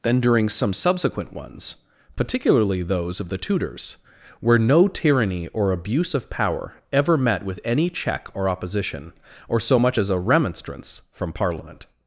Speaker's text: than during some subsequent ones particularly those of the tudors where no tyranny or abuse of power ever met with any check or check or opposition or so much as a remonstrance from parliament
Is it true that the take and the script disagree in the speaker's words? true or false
true